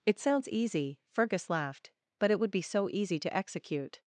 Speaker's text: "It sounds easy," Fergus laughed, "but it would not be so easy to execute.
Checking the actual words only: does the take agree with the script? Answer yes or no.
no